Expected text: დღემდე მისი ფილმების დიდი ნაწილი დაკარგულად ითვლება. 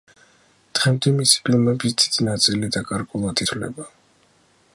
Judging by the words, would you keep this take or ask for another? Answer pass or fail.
pass